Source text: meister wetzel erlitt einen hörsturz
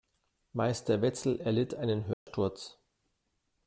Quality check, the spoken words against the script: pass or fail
pass